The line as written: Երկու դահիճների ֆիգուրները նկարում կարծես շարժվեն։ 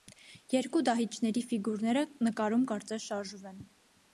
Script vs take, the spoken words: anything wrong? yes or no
no